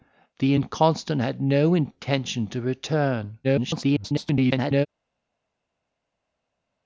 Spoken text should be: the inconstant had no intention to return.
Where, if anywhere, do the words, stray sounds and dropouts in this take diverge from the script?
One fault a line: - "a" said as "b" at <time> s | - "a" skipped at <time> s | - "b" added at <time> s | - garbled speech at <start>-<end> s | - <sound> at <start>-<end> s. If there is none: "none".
- garbled speech at 3.4-4.9 s